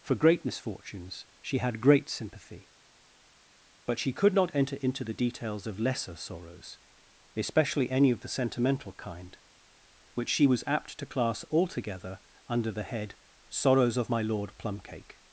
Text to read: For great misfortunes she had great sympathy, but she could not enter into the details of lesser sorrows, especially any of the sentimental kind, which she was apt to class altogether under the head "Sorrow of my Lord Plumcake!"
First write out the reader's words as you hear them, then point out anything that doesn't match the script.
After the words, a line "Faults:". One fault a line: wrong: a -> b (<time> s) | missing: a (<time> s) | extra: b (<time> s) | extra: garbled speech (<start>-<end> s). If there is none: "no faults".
For great misfortunes she had great sympathy, but she could not enter into the details of lesser sorrows, especially any of the sentimental kind, which she was apt to class altogether under the head "Sorrows of my Lord Plumcake!"
Faults:
wrong: Sorrow -> Sorrows (13.5 s)